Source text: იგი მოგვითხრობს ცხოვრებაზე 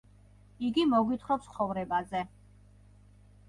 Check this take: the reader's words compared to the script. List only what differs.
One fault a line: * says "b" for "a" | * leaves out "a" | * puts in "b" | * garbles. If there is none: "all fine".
all fine